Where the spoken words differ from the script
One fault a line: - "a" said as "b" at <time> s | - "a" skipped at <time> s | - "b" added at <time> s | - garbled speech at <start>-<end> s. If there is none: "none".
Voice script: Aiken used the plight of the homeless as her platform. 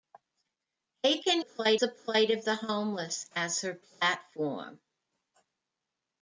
- "used" said as "plight" at 1.4 s